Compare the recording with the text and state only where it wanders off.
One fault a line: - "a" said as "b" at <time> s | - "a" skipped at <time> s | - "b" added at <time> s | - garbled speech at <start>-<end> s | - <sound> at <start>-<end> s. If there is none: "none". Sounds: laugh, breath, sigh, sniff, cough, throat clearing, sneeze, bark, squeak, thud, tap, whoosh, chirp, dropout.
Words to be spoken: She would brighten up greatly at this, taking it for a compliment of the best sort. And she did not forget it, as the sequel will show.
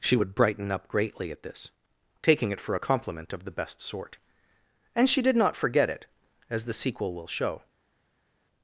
none